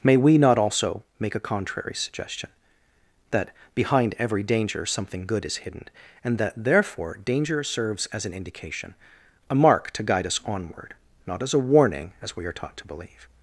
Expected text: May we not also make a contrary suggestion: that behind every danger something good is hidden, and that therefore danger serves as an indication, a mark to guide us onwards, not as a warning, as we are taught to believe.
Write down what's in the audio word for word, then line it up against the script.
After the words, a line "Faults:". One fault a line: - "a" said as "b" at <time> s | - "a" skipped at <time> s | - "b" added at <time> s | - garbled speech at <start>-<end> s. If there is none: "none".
May we not also make a contrary suggestion: that behind every danger something good is hidden, and that therefore danger serves as an indication, a mark to guide us onward, not as a warning, as we are taught to believe.
Faults:
- "onwards" said as "onward" at 10.5 s